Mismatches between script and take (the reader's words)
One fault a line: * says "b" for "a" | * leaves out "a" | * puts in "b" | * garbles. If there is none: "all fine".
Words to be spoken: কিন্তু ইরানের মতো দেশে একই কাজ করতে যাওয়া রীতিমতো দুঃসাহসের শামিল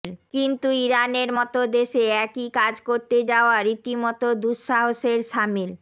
all fine